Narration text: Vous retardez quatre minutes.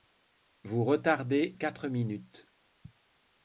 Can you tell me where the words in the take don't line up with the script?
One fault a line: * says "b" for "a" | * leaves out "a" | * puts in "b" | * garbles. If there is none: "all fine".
all fine